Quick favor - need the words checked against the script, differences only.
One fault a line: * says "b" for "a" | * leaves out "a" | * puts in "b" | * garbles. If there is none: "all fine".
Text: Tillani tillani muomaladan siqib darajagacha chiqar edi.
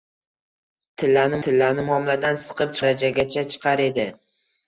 all fine